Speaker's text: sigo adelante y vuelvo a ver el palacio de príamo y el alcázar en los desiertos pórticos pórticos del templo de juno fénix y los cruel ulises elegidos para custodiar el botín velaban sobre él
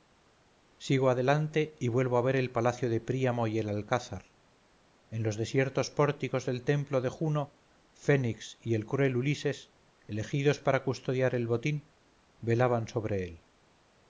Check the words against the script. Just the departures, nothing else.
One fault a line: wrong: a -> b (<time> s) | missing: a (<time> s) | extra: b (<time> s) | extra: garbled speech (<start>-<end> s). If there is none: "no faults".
missing: pórticos (6.5 s)
wrong: los -> el (8.7 s)